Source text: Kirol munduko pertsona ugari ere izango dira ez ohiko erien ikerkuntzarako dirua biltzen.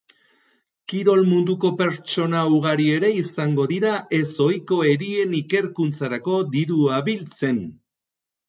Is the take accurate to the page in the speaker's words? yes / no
yes